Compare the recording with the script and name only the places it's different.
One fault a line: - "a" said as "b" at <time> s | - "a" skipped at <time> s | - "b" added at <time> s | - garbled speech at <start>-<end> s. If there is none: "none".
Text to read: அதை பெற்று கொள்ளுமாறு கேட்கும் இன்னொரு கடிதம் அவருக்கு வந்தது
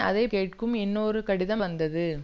- "பெற்று கொள்ளுமாறு" skipped at 0.3 s
- "அவருக்கு" skipped at 1.6 s